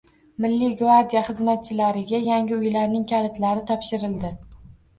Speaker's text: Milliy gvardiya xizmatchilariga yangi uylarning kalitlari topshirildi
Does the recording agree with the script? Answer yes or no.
yes